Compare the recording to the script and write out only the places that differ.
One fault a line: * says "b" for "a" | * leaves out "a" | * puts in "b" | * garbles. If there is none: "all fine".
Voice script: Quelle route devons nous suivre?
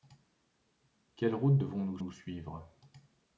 * puts in "nous"